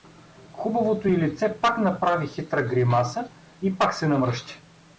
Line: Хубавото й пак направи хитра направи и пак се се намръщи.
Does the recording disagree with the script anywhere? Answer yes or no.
yes